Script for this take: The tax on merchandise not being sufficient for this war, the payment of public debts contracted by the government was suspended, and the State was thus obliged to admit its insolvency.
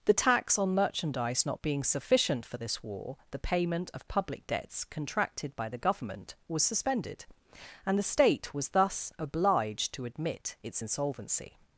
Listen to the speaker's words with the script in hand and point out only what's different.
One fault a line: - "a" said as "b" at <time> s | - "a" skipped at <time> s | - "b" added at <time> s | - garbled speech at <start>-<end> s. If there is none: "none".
none